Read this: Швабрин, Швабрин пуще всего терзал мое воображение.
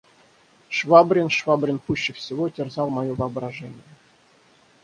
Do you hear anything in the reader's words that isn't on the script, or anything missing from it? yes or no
no